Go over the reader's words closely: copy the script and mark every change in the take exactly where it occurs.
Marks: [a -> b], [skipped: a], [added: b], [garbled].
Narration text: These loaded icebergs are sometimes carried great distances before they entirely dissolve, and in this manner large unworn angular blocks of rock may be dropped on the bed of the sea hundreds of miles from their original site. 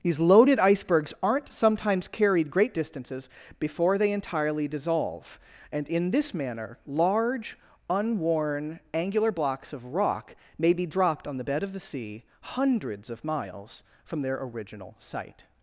These loaded icebergs [are -> aren't] sometimes carried great distances before they entirely dissolve, and in this manner large unworn angular blocks of rock may be dropped on the bed of the sea hundreds of miles from their original site.